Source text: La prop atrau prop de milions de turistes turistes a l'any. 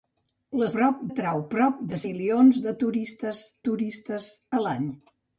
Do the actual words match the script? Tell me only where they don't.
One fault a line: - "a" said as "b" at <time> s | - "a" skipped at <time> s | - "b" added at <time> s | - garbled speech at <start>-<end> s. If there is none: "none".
none